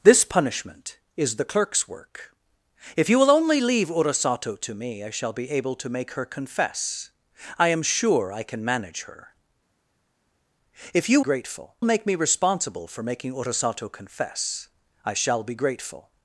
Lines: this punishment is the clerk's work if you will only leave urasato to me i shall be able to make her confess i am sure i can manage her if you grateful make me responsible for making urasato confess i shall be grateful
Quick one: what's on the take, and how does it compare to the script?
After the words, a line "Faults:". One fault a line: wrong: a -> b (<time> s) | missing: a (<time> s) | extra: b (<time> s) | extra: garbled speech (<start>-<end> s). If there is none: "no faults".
this punishment is the clerk's work if you will only leave urasato to me i shall be able to make her confess i am sure i can manage her if you grateful make me responsible for making urasato confess i shall be grateful
Faults:
no faults